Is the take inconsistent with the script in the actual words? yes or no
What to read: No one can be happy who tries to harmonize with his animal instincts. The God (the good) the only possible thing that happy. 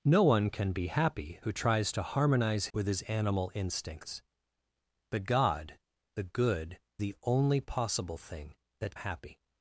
no